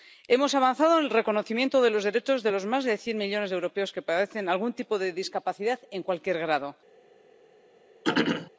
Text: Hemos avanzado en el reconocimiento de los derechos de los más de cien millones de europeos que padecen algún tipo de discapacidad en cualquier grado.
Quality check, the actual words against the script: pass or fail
pass